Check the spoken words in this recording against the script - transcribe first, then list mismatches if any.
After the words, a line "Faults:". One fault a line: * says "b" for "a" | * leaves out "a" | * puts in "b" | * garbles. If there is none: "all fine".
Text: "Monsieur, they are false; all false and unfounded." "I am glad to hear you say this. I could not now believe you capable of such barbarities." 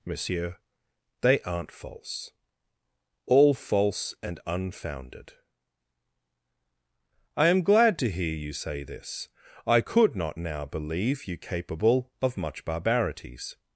"Monsieur, they aren't false; all false and unfounded." "I am glad to hear you say this. I could not now believe you capable of much barbarities."
Faults:
* says "aren't" for "are"
* says "much" for "such"